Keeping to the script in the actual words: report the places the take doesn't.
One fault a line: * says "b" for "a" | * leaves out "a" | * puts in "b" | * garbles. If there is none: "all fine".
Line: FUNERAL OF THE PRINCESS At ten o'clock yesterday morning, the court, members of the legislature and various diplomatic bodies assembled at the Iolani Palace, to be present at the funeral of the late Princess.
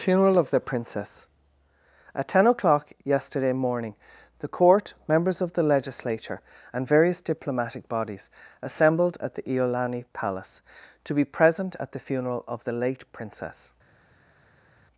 all fine